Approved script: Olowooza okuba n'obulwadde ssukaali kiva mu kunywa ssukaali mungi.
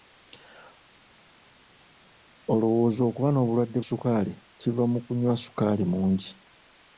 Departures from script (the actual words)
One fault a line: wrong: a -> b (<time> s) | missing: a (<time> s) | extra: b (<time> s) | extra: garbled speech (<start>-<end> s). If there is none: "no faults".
no faults